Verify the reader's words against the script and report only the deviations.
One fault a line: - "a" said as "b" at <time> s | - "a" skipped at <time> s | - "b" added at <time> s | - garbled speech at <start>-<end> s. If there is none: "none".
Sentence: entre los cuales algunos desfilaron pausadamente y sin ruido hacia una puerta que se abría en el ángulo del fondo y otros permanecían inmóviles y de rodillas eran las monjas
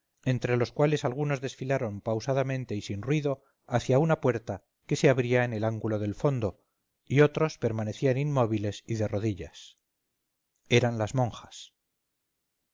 none